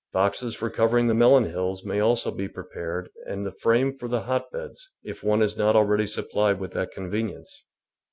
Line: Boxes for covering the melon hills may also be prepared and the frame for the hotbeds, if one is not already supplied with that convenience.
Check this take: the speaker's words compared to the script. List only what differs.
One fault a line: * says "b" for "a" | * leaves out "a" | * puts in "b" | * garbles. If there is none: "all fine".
all fine